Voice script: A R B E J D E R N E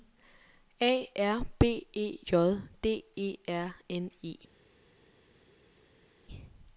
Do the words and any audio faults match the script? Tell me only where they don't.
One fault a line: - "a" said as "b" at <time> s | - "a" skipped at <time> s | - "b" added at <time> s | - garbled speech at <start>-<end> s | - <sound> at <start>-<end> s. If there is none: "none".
none